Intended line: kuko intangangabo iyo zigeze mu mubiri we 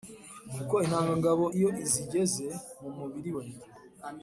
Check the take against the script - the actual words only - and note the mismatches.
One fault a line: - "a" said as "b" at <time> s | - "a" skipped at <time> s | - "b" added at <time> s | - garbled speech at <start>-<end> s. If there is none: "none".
none